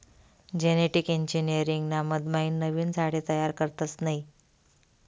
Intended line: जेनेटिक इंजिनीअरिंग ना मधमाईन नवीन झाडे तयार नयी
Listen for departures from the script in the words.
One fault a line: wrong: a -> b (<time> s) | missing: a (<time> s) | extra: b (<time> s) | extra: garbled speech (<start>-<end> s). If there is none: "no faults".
extra: करतस (3.6 s)